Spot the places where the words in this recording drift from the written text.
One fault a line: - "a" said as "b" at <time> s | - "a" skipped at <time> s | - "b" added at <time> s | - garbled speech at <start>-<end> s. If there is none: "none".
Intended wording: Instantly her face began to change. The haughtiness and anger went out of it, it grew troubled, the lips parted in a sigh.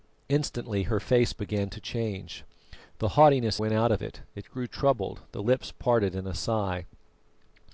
- "and anger" skipped at 3.6 s